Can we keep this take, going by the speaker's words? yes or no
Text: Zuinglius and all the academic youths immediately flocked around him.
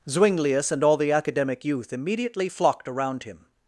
no